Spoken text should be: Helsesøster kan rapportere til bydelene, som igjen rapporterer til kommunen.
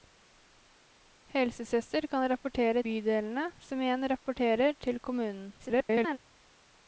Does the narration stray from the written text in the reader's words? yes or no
yes